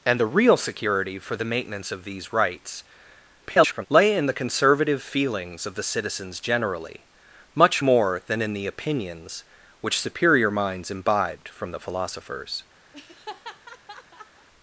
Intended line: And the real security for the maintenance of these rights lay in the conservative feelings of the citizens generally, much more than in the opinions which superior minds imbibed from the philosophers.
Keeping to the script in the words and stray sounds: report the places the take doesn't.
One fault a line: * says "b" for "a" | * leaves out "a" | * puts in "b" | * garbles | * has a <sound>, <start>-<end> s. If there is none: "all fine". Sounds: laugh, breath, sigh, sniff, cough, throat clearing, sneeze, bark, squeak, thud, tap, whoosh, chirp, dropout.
* garbles
* has a laugh, 12.9-14.5 s